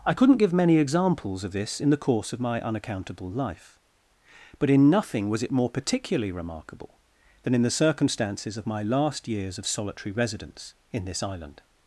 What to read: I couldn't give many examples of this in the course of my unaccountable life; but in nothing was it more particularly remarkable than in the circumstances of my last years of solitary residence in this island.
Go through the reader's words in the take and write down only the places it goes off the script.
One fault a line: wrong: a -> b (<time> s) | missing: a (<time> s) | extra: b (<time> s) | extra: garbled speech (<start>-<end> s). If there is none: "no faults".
no faults